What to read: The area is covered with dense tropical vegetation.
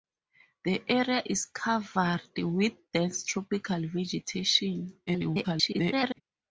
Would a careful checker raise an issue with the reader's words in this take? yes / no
yes